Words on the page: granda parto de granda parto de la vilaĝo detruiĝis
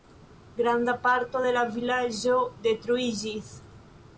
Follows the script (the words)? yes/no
no